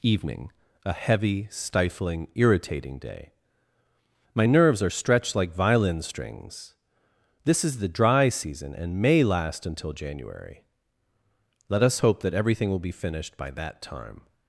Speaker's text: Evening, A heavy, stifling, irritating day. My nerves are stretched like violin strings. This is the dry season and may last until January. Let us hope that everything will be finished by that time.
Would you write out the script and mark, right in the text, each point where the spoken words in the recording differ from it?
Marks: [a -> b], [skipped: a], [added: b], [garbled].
Evening, A heavy, stifling, irritating day. My nerves are stretched like violin strings. This is the dry season and may last until January. Let us hope that everything will be finished by that time.